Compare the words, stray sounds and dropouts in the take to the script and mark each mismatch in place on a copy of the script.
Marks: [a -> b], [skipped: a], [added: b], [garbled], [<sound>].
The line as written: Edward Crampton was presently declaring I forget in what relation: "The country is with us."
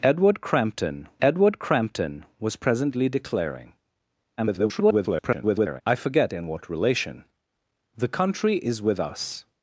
Edward Crampton [added: edward Crampton] was presently declaring [garbled] I forget in what relation: "The country is with us."